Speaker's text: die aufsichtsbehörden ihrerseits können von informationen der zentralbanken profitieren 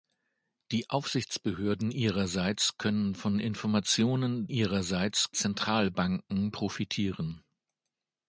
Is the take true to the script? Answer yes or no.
no